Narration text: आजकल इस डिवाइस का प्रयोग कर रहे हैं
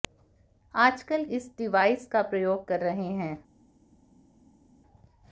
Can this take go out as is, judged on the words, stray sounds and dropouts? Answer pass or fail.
pass